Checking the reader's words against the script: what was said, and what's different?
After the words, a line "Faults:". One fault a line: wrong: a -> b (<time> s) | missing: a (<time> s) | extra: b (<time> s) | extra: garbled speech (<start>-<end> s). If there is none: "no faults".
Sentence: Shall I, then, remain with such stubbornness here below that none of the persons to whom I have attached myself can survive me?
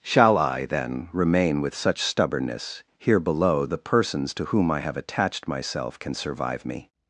Shall I, then, remain with such stubbornness here below the persons to whom I have attached myself can survive me?
Faults:
missing: that none of (3.6 s)